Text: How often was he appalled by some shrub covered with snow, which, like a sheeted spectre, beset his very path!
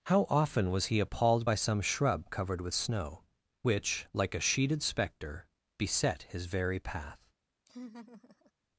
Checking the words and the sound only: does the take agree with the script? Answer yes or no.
no